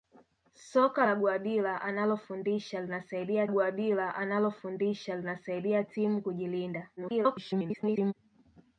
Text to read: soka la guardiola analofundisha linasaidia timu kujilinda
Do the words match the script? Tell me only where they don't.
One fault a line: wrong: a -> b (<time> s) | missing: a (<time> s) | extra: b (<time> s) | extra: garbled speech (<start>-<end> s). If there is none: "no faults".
extra: guardiola analofundisha linasaidia (3.5 s)
extra: garbled speech (7.0-8.1 s)